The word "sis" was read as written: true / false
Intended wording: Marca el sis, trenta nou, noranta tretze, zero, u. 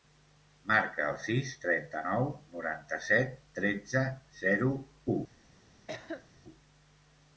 true